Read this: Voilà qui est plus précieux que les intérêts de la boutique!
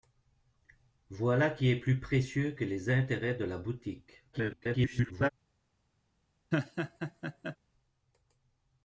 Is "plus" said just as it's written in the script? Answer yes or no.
yes